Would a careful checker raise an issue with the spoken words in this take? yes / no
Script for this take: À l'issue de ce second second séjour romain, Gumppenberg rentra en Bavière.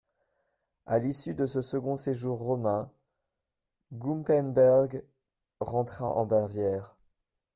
yes